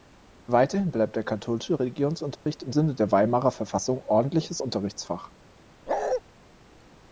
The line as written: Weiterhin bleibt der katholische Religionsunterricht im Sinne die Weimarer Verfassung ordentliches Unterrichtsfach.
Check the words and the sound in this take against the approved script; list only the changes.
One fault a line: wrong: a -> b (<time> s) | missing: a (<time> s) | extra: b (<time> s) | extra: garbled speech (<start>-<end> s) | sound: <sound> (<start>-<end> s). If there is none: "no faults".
sound: dropout (2.4-2.5 s)
wrong: die -> der (2.9 s)
sound: bark (5.9-6.2 s)